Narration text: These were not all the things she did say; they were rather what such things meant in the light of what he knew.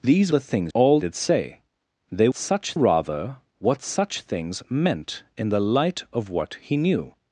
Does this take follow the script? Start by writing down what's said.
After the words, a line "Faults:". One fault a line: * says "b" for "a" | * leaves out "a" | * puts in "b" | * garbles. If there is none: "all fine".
These the things all did say; they such rather what such things meant in the light of what he knew.
Faults:
* leaves out "were not all"
* says "all" for "she"
* says "such" for "were"